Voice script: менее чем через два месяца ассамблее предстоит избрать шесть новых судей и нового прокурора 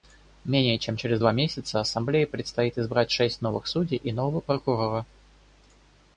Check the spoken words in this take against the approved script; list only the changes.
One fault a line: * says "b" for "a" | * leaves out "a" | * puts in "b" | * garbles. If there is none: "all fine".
all fine